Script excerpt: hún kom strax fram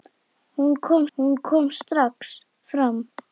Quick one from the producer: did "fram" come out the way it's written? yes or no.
yes